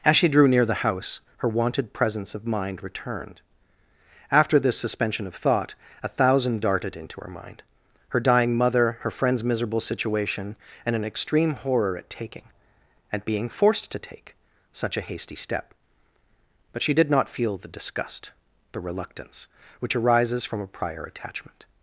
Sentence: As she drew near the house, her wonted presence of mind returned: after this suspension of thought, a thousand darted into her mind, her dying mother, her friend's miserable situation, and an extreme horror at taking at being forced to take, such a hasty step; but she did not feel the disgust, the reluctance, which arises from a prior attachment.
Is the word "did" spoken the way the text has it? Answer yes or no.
yes